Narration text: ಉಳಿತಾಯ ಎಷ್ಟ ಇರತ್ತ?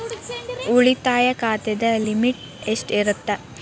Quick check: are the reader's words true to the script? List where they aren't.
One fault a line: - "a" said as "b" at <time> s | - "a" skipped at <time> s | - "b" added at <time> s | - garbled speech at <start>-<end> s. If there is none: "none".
- "ಖಾತೆದ ಲಿಮಿಟ್" added at 1.4 s